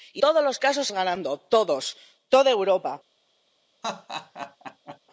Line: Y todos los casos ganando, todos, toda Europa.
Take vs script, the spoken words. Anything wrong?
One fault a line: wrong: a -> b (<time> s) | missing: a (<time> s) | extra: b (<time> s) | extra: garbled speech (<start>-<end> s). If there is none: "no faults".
no faults